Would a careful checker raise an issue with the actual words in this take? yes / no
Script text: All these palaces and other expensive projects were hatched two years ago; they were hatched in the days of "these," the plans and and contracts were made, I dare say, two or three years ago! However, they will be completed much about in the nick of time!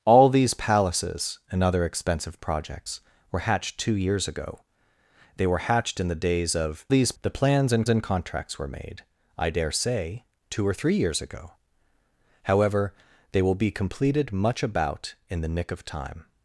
no